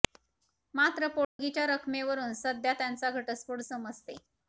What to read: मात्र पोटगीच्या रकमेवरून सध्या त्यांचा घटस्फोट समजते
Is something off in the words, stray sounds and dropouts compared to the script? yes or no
yes